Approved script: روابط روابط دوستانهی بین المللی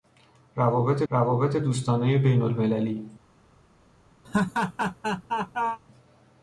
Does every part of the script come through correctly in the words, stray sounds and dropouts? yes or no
no